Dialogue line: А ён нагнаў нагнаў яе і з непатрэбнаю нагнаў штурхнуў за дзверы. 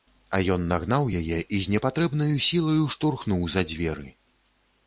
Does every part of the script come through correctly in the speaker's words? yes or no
no